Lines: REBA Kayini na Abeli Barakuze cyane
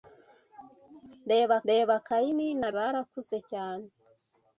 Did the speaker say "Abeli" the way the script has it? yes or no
no